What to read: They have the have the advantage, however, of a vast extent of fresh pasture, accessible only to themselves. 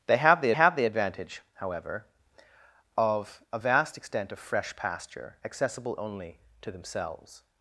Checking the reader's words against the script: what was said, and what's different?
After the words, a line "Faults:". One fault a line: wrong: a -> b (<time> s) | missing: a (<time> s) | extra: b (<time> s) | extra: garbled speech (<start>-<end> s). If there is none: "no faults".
They have the have the advantage, however, of a vast extent of fresh pasture, accessible only to themselves.
Faults:
no faults